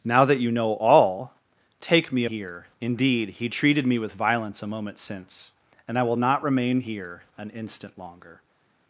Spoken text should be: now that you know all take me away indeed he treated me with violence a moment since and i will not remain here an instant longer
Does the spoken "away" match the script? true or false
false